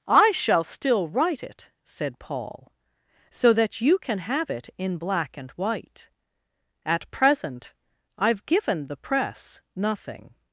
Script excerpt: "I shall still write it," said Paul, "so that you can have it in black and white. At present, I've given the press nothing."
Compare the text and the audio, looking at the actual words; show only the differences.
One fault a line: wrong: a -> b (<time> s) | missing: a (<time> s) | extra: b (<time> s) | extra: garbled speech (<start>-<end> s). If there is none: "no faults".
no faults